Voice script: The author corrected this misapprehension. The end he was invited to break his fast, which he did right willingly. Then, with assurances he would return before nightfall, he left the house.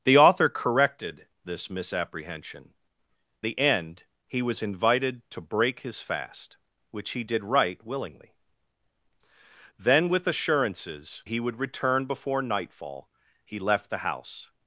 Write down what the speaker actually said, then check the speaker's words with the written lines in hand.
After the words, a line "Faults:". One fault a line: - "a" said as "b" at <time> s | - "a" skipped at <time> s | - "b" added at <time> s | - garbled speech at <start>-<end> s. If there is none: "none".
The author corrected this misapprehension. The end he was invited to break his fast, which he did right willingly. Then, with assurances he would return before nightfall, he left the house.
Faults:
none